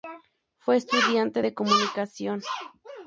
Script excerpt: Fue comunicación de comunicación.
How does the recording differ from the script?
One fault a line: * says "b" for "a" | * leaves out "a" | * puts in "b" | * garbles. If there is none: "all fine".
* says "estudiante" for "comunicación"